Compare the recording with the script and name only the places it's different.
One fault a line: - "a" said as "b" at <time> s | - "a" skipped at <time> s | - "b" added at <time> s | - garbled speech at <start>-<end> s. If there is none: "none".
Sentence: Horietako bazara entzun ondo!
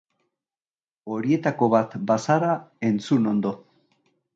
- "bat" added at 1.8 s